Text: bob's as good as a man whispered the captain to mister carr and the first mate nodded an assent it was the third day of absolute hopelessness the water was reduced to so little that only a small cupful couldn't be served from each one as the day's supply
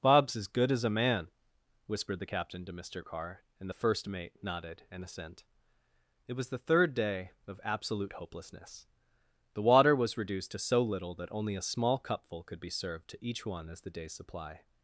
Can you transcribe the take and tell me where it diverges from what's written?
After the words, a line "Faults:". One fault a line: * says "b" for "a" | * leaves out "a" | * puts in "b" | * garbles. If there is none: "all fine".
bob's as good as a man whispered the captain to mister carr and the first mate nodded an assent it was the third day of absolute hopelessness the water was reduced to so little that only a small cupful could be served to each one as the day's supply
Faults:
* says "could" for "couldn't"
* says "to" for "from"